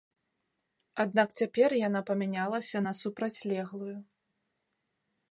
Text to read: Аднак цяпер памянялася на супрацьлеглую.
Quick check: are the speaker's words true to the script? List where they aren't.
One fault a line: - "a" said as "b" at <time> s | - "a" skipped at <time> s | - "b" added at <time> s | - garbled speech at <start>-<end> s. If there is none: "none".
- "яна" added at 1.9 s